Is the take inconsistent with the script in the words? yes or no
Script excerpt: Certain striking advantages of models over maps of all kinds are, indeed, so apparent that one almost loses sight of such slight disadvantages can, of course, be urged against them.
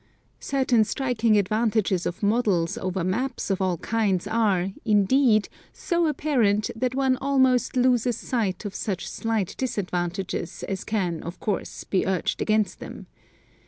yes